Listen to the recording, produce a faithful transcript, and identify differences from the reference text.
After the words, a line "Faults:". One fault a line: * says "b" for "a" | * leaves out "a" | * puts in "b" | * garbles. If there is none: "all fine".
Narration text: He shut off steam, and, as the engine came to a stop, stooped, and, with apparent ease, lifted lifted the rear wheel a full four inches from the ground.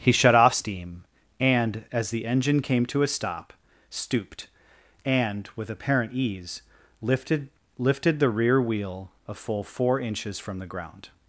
He shut off steam, and, as the engine came to a stop, stooped, and, with apparent ease, lifted lifted the rear wheel a full four inches from the ground.
Faults:
all fine